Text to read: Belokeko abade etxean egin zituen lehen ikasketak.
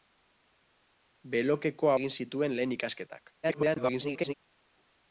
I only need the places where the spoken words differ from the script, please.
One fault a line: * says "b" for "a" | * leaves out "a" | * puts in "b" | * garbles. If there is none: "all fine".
* leaves out "abade etxean"
* garbles